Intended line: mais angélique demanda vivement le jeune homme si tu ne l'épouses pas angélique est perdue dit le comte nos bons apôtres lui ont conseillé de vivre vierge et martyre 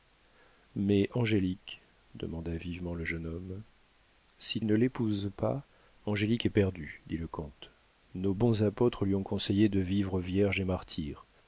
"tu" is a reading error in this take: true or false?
true